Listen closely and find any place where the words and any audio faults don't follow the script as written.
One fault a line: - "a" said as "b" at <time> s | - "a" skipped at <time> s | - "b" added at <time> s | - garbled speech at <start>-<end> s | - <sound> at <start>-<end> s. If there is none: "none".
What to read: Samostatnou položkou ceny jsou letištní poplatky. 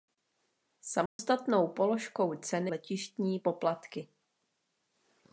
- dropout at 1.1-1.2 s
- "jsou" skipped at 2.7 s